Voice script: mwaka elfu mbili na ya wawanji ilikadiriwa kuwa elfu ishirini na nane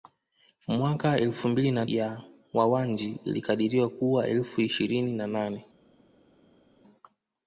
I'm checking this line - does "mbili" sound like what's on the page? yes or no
yes